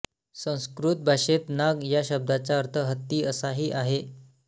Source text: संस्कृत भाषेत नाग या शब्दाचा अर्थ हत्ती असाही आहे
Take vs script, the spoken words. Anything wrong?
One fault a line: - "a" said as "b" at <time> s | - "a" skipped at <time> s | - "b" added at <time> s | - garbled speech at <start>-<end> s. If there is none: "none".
none